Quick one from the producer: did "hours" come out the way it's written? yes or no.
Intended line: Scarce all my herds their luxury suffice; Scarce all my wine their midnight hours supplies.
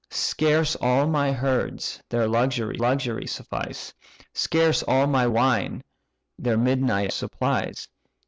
no